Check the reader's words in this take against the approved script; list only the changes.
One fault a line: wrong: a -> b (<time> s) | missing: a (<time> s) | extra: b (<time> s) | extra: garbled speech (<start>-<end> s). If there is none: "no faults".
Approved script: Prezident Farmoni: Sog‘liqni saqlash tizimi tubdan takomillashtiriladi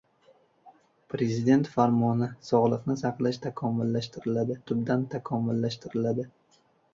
wrong: tizimi -> takomillashtiriladi (3.5 s)